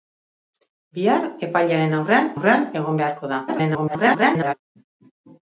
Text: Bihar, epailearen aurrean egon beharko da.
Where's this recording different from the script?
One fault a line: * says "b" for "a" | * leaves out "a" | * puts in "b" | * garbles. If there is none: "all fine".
* puts in "aurrean"
* garbles